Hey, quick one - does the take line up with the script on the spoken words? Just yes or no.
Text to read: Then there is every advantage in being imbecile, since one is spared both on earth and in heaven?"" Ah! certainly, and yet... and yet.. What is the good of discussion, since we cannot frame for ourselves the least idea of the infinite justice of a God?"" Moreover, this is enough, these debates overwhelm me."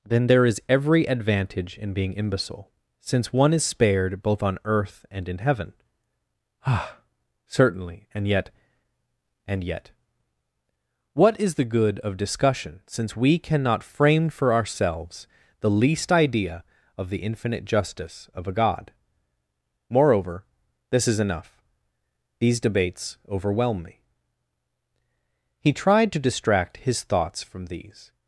no